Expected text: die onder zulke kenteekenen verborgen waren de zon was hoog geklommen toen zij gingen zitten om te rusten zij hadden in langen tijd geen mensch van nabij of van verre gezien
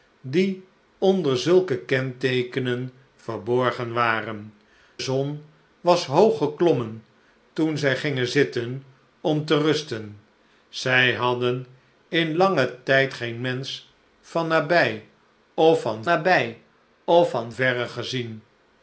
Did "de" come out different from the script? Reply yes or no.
yes